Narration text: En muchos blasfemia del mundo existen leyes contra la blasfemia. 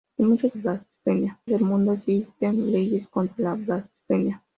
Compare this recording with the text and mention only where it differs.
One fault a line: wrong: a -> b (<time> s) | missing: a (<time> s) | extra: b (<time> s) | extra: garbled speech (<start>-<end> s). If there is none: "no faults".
no faults